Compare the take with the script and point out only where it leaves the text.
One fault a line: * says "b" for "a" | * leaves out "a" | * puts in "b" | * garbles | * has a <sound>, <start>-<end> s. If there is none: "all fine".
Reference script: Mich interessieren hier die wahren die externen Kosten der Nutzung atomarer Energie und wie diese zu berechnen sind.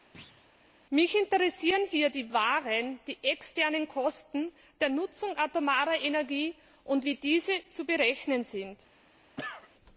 * has a thud, 0.1-0.5 s
* has a cough, 9.4-9.7 s